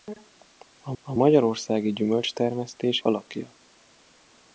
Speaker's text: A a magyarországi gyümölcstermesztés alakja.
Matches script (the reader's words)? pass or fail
pass